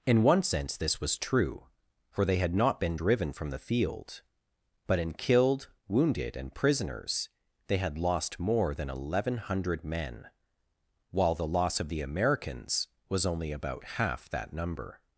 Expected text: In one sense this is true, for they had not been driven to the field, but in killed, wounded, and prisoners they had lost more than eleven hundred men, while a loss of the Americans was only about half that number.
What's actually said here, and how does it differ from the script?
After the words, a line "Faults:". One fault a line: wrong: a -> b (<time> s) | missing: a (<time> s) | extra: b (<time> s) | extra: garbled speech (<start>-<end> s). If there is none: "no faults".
In one sense this was true, for they had not been driven from the field, but in killed, wounded, and prisoners they had lost more than eleven hundred men, while the loss of the Americans was only about half that number.
Faults:
wrong: is -> was (1.0 s)
wrong: to -> from (3.3 s)
wrong: a -> the (11.3 s)